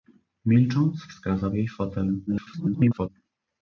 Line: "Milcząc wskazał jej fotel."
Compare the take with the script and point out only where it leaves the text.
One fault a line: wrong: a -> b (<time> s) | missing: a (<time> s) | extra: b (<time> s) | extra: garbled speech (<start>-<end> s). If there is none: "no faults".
extra: garbled speech (2.3-3.1 s)